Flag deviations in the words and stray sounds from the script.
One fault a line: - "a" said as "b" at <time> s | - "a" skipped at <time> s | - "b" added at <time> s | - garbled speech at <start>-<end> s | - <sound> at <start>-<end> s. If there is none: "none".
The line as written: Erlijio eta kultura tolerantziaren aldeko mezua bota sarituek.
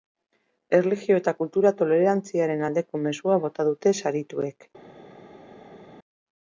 - "dute" added at 3.7 s